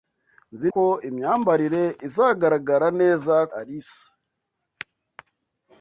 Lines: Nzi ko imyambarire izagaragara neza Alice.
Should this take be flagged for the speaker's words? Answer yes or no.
no